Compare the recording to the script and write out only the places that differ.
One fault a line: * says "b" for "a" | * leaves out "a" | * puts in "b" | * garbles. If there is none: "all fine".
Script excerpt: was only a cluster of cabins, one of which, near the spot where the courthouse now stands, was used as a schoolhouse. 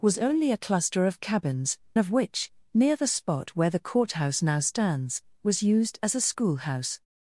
* leaves out "one"